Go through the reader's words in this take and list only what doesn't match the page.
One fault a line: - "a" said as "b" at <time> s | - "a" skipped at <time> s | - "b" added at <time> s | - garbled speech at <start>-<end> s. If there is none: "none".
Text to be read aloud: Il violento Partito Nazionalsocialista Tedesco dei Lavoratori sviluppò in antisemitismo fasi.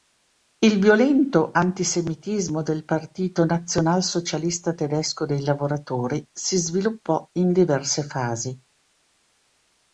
- "antisemitismo del" added at 1.5 s
- "si" added at 6.3 s
- "antisemitismo" said as "diverse" at 7.5 s